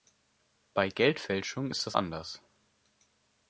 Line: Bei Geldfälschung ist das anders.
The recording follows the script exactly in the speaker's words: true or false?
true